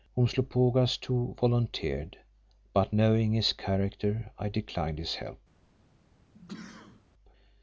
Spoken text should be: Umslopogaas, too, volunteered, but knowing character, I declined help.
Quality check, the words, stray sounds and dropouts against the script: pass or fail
fail